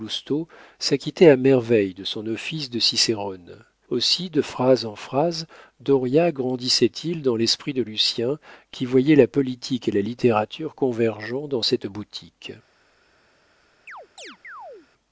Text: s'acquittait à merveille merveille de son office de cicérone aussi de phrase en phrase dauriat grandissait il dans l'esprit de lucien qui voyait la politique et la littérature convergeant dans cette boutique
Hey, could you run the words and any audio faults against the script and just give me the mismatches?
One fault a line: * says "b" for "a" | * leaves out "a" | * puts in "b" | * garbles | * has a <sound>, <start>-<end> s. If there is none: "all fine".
* leaves out "merveille"
* has a chirp, 13.9-14.9 s